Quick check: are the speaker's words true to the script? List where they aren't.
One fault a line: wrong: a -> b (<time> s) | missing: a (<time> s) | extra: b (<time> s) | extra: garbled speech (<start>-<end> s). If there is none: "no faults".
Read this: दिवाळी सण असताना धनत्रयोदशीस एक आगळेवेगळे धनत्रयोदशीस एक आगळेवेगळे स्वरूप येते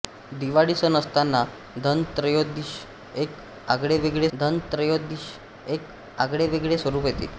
no faults